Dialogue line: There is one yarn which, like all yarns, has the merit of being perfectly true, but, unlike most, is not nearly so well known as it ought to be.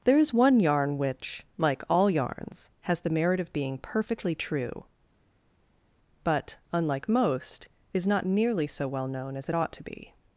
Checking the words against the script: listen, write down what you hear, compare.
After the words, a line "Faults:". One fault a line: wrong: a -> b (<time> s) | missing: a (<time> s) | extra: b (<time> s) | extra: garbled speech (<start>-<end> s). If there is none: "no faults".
There is one yarn which, like all yarns, has the merit of being perfectly true, but, unlike most, is not nearly so well known as it ought to be.
Faults:
no faults